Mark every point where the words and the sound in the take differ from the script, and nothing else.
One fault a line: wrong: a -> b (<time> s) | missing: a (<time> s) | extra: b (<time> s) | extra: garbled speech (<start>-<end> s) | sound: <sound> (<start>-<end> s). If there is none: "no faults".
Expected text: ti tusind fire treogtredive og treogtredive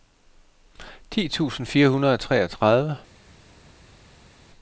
wrong: treogtredive -> hundrede (1.9 s)